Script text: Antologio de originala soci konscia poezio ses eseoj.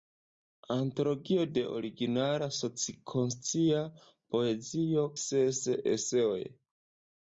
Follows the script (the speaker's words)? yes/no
yes